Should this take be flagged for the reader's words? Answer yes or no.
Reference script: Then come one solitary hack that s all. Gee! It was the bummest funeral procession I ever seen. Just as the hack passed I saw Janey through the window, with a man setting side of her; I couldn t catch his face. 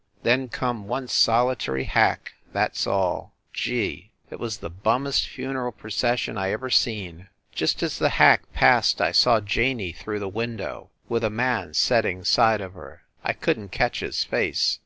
no